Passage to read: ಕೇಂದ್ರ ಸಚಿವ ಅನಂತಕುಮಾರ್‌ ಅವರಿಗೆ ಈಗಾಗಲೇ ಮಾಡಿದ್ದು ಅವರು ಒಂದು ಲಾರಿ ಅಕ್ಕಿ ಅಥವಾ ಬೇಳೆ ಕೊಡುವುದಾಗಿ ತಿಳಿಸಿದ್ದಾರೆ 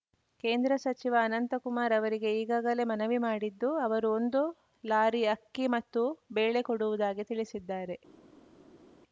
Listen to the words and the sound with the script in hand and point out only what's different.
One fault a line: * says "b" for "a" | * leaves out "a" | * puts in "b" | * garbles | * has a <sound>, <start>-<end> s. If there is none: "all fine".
* puts in "ಮನವಿ"
* says "ಮತ್ತು" for "ಅಥವಾ"